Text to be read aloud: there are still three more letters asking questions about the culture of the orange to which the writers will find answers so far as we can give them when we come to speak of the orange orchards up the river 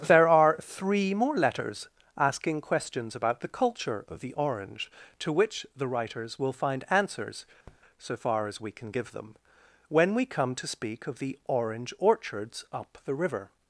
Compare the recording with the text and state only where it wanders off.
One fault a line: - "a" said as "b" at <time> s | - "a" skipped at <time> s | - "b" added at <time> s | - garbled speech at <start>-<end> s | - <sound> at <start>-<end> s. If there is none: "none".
- "still" skipped at 0.6 s
- tap at 7.7-7.8 s